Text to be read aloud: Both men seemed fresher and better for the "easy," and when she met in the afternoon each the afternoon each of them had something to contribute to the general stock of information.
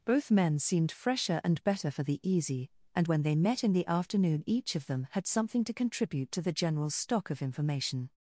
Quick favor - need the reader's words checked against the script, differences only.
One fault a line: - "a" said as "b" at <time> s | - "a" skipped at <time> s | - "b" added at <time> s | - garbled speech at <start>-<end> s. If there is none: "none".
- "she" said as "they" at 3.2 s
- "the afternoon each" skipped at 4.8 s